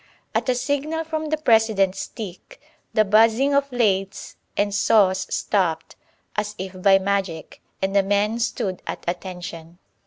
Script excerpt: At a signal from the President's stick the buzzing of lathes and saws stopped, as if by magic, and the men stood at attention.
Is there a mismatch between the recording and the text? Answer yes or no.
no